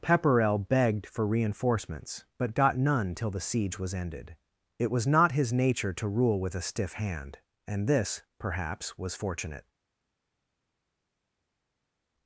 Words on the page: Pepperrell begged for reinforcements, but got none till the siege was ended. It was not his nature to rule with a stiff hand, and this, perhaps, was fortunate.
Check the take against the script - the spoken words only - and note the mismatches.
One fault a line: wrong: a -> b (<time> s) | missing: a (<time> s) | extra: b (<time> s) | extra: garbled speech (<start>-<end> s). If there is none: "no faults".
no faults